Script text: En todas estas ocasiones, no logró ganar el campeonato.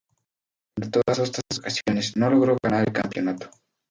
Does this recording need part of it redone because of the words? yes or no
no